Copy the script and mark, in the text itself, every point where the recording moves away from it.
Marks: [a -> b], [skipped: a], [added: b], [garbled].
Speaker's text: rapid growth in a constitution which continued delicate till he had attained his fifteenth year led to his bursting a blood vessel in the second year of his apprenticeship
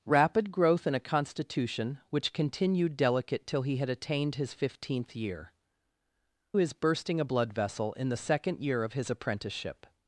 rapid growth in a constitution which continued delicate till he had attained his fifteenth year [skipped: led to] his bursting a blood vessel in the second year of his apprenticeship